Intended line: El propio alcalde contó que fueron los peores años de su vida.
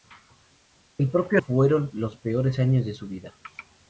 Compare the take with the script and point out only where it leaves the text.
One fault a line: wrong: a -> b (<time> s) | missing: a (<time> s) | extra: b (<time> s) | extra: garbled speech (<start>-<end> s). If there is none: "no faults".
missing: alcalde contó que (1.4 s)